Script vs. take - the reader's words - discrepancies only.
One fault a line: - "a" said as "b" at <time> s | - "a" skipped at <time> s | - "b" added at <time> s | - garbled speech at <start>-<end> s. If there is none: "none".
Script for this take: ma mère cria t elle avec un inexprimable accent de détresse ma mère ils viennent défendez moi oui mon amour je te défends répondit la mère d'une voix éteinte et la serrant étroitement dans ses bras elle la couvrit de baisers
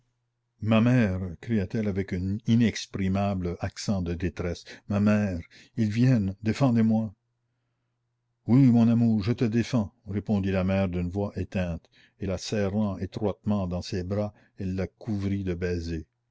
none